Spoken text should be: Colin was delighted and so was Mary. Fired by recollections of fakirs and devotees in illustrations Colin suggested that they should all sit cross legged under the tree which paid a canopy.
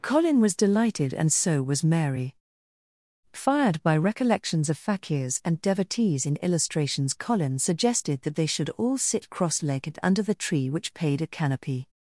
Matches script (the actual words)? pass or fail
pass